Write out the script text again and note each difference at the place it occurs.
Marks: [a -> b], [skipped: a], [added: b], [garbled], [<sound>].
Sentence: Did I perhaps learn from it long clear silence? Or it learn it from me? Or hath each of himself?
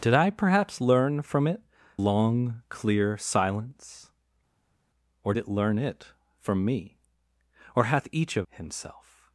Did I perhaps learn from it long clear silence? Or it learn it from me? Or hath each of himself?